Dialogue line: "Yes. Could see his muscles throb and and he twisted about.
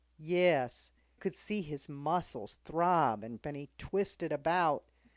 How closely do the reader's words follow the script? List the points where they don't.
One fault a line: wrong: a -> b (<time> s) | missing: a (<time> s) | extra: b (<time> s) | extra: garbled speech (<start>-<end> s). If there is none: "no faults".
no faults